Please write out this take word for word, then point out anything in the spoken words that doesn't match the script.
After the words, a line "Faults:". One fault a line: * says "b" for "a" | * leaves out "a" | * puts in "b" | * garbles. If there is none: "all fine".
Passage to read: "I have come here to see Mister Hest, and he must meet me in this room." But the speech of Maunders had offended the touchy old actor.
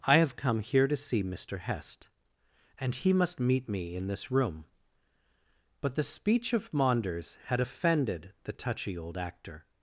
"I have come here to see Mister Hest, and he must meet me in this room." But the speech of Maunders had offended the touchy old actor.
Faults:
all fine